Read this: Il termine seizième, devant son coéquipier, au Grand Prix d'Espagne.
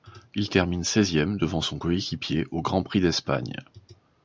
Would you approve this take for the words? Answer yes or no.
yes